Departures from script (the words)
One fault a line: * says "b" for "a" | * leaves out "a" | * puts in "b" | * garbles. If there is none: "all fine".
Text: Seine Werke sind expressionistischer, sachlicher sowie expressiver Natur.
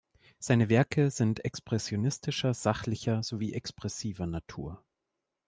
all fine